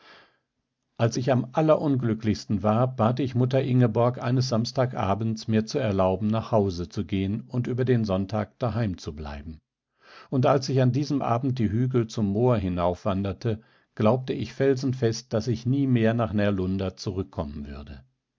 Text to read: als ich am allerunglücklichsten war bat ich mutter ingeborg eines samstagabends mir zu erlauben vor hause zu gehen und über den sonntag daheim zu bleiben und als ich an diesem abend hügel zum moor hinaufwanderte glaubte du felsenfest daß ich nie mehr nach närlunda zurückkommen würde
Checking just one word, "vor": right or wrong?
wrong